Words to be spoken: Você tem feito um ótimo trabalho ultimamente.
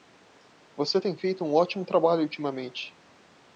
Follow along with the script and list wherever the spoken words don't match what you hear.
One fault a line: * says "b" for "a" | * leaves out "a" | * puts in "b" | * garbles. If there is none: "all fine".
all fine